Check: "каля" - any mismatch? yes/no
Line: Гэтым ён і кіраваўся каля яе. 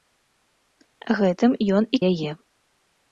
yes